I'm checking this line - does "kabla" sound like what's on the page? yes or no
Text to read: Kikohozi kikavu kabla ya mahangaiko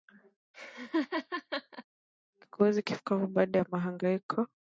no